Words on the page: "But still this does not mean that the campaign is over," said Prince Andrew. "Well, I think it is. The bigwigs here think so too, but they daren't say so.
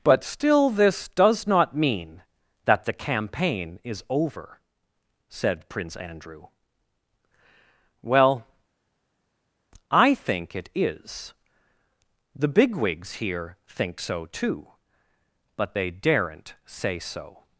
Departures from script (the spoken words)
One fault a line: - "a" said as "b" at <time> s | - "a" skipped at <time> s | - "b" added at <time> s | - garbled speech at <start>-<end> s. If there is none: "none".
none